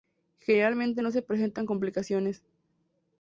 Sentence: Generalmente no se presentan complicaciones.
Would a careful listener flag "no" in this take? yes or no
no